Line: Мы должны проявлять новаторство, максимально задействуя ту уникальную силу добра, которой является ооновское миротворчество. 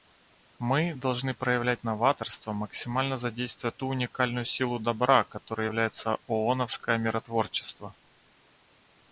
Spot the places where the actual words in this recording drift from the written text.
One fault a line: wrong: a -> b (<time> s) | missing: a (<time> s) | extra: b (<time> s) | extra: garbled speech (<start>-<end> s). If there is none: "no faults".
no faults